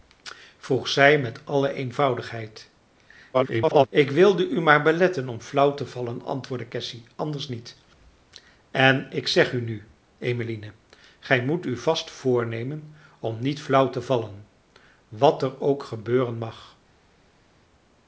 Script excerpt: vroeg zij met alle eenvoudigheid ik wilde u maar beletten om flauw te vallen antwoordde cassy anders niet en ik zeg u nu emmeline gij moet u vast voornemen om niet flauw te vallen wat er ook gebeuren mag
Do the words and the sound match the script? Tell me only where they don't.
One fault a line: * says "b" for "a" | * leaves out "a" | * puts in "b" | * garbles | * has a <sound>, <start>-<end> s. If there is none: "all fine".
* garbles